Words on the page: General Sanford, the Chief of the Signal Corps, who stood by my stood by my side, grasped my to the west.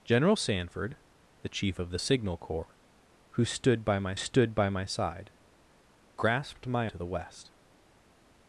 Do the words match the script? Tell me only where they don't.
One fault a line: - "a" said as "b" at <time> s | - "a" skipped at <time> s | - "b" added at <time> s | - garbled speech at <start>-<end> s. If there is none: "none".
none